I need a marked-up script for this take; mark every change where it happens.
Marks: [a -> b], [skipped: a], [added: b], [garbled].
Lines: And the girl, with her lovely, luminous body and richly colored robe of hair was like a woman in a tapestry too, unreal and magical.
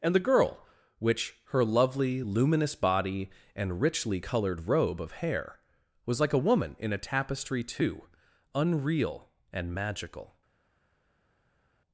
And the girl, [with -> which] her lovely, luminous body and richly colored robe of hair was like a woman in a tapestry too, unreal and magical.